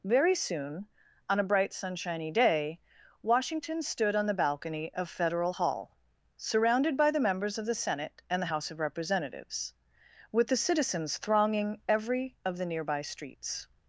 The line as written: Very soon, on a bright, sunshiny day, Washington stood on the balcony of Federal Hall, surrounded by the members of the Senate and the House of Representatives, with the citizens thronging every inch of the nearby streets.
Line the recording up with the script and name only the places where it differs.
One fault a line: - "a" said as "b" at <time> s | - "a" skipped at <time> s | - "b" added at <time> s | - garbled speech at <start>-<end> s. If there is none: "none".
- "inch" skipped at 12.3 s